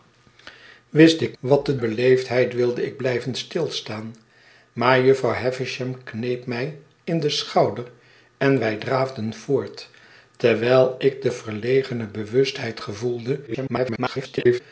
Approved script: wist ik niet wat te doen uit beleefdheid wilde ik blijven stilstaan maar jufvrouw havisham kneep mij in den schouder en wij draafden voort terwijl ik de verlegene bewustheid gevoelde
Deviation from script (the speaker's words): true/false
true